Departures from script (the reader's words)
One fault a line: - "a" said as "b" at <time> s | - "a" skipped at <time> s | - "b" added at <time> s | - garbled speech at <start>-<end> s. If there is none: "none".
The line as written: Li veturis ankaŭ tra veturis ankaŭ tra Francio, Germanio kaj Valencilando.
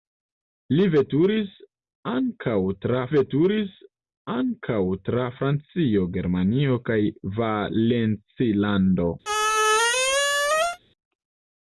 none